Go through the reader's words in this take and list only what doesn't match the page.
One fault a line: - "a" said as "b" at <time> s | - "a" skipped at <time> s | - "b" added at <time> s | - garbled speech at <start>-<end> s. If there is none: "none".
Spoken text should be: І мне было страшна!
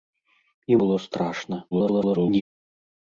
- "мне" skipped at 0.8 s
- garbled speech at 1.7-2.4 s